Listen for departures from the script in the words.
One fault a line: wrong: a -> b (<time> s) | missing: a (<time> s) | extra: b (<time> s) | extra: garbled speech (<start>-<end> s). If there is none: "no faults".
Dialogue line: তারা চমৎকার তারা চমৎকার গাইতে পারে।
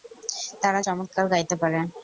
missing: তারা চমৎকার (1.2 s)